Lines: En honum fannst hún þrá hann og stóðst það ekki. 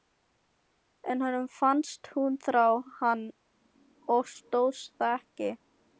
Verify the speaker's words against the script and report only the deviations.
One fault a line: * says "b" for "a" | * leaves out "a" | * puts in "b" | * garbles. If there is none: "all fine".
all fine